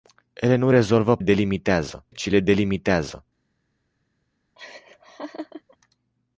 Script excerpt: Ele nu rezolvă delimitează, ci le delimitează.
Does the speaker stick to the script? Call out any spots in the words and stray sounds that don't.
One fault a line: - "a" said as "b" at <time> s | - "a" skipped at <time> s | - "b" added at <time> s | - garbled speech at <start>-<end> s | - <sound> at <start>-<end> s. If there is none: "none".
- laugh at 4.6-5.8 s